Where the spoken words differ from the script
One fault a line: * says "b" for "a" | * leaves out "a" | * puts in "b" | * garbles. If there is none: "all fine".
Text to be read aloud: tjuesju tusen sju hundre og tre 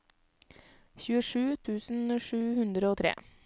all fine